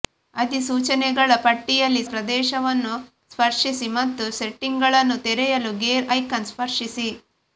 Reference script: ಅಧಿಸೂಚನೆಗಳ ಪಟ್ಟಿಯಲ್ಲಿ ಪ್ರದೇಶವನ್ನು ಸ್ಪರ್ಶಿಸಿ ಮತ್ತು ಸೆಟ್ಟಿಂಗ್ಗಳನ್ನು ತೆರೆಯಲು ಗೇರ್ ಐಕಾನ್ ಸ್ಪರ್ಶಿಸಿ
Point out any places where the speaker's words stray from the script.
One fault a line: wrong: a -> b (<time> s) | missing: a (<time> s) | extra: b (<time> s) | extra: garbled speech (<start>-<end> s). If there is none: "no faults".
no faults